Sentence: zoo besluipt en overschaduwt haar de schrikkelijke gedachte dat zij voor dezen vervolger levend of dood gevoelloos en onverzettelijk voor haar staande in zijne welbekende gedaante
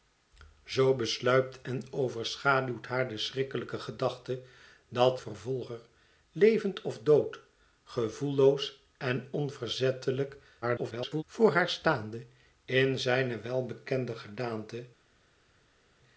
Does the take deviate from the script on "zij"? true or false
true